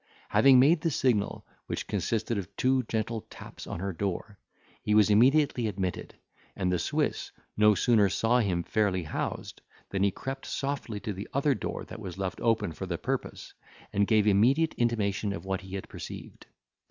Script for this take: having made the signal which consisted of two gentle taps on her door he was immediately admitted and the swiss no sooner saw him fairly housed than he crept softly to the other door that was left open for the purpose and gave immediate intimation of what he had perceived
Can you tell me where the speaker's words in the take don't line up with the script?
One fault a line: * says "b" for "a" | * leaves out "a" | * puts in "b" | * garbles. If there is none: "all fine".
all fine